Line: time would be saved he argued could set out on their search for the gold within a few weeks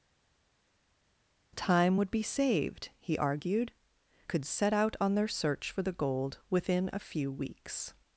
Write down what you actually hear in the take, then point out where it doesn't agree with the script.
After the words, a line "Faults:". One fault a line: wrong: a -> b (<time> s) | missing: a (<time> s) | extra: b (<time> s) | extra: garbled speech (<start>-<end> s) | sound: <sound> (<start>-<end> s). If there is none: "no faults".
time would be saved he argued could set out on their search for the gold within a few weeks
Faults:
no faults